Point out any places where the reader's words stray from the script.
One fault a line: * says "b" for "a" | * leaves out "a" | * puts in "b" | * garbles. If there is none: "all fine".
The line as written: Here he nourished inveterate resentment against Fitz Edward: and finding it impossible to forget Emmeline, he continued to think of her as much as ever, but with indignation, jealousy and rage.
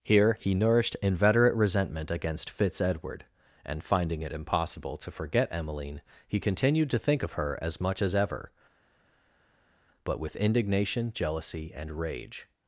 all fine